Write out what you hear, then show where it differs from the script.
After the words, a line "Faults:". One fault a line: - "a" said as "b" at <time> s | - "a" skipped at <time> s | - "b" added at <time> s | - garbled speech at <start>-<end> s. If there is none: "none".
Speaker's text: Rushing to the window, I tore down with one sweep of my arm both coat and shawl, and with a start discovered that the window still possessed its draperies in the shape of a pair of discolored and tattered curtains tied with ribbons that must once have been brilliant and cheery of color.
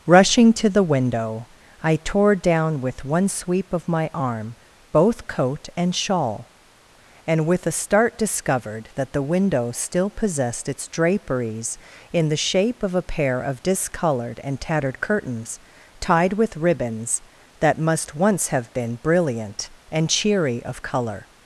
Rushing to the window, I tore down with one sweep of my arm both coat and shawl, and with a start discovered that the window still possessed its draperies in the shape of a pair of discolored and tattered curtains tied with ribbons that must once have been brilliant and cheery of color.
Faults:
none